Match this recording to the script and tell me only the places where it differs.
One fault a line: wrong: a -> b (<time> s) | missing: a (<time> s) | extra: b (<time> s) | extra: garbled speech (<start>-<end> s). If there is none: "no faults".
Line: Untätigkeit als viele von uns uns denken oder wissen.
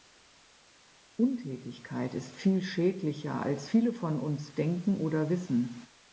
extra: ist viel schädlicher (2.1 s)
missing: uns (4.5 s)